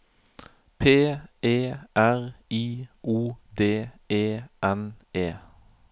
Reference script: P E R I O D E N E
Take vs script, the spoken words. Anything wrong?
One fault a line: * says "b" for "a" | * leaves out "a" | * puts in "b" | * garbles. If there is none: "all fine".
all fine